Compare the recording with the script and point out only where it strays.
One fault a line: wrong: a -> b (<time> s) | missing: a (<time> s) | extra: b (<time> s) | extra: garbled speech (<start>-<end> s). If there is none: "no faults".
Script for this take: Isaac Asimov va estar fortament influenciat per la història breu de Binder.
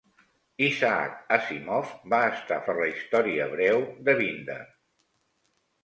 missing: fortament influenciat (2.6 s)